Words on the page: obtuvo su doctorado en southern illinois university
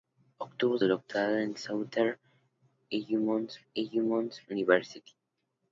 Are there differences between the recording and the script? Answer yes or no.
yes